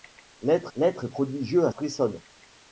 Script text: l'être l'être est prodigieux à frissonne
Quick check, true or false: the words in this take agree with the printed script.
true